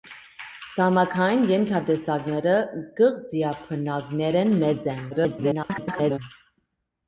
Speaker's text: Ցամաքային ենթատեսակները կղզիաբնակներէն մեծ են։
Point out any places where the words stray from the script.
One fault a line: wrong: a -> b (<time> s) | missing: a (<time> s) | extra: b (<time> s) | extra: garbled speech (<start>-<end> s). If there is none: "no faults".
extra: garbled speech (5.1-6.2 s)